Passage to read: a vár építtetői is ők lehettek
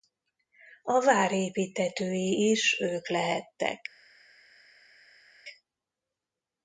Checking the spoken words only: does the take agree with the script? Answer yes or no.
yes